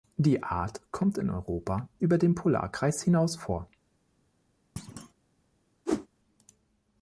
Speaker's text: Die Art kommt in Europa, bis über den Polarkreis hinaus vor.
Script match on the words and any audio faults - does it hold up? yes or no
no